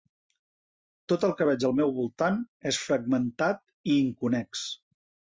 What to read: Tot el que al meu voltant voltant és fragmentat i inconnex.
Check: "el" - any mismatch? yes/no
no